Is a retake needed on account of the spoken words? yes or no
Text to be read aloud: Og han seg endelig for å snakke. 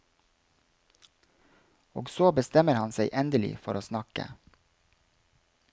yes